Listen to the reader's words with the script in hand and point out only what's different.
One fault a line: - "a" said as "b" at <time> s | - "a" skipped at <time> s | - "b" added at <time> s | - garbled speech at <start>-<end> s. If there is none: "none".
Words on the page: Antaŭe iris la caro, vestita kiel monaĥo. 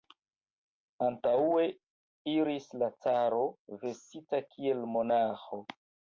none